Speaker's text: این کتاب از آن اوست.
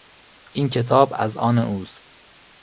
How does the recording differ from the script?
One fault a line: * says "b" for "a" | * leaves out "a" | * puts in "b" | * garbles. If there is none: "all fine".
all fine